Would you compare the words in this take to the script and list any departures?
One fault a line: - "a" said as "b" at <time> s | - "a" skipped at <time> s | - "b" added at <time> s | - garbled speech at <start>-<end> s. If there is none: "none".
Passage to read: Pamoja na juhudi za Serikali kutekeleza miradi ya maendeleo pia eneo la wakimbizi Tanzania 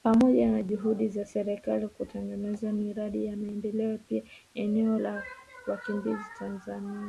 none